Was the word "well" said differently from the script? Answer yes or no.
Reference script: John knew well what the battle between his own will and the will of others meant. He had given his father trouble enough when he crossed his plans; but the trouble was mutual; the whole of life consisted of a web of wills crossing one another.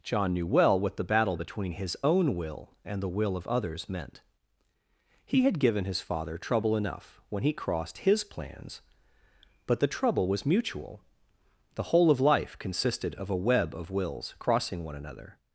no